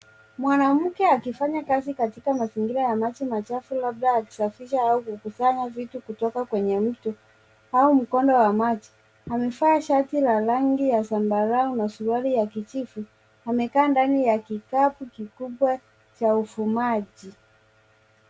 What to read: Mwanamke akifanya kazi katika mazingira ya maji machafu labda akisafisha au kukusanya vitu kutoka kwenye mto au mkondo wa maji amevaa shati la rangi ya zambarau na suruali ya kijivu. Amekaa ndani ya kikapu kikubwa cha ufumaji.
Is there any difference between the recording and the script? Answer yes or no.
no